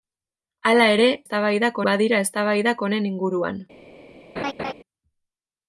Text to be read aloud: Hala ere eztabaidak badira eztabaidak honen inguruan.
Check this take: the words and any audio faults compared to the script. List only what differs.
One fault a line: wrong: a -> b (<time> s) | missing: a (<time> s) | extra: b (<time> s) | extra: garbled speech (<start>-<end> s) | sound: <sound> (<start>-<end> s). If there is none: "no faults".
sound: laugh (4.4-4.7 s)